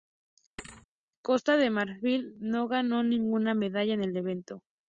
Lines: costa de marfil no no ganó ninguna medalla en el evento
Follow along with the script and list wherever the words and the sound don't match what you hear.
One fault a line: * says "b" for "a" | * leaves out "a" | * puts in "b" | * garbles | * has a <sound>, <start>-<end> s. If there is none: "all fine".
* has a thud, 0.6-0.9 s
* leaves out "no"